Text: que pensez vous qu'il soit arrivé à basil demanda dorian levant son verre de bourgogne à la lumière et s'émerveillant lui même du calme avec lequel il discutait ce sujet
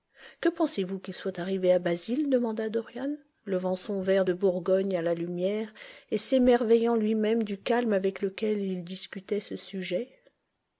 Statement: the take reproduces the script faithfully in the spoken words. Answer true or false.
true